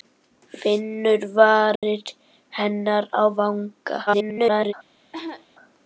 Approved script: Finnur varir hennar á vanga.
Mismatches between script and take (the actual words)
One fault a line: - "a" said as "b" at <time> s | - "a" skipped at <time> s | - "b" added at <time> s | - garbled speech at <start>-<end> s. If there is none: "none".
- garbled speech at 4.1-4.7 s